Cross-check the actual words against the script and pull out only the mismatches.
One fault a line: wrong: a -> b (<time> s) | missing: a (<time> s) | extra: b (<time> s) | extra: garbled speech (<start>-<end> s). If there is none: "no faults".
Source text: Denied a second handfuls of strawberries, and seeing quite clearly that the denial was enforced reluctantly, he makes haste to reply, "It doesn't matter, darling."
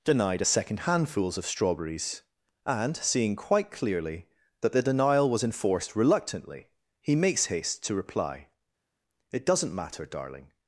no faults